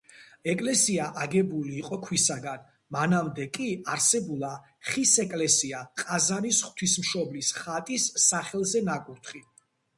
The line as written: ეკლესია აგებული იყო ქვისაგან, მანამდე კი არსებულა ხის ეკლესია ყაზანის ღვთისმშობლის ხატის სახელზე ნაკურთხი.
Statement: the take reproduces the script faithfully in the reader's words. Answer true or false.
true